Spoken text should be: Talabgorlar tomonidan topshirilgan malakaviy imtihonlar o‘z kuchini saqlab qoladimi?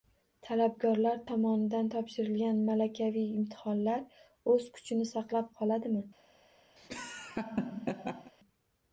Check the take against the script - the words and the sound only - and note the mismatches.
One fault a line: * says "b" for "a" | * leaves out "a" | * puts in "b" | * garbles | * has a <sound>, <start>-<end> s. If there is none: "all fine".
* has a laugh, 6.8-8.3 s